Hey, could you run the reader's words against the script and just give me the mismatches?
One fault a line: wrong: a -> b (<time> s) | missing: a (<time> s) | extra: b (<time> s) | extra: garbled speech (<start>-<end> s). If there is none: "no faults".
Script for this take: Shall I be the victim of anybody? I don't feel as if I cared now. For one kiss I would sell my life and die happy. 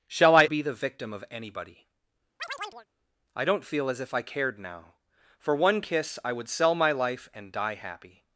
no faults